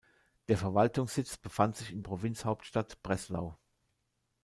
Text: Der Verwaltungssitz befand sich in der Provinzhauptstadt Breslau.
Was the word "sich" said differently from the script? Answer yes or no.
no